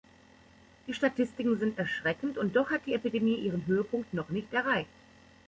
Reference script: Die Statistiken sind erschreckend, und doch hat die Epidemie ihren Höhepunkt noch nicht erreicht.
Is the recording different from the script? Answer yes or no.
no